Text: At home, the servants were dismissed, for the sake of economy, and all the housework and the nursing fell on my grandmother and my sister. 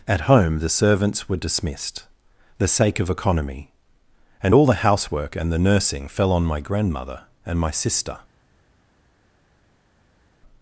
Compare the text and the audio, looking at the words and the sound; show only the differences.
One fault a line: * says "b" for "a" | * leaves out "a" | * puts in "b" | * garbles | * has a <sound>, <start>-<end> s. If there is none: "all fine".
* leaves out "for"